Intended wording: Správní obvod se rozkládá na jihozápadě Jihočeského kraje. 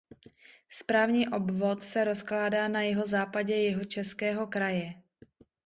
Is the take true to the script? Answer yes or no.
yes